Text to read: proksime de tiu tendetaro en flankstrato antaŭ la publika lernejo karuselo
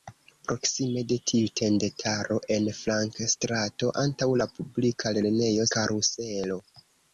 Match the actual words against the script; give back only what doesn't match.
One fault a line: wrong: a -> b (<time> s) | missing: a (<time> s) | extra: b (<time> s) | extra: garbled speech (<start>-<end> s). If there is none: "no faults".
no faults